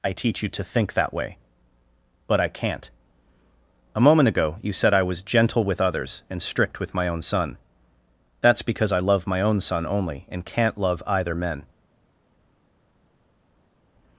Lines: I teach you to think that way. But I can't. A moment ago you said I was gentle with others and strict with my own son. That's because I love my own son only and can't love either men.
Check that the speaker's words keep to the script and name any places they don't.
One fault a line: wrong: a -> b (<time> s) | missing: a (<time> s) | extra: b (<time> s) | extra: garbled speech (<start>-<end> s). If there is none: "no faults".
no faults